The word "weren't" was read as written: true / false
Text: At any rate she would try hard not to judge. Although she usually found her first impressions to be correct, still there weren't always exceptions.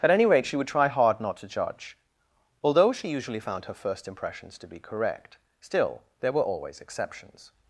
false